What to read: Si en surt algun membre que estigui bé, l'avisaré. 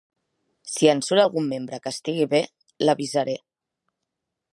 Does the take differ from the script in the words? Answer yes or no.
no